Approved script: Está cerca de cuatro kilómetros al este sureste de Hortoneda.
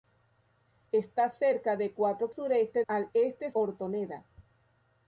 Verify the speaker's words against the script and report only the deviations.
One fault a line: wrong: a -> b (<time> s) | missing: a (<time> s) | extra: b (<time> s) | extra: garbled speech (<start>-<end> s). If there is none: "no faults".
wrong: kilómetros -> sureste (2.3 s)
missing: sureste de (3.5 s)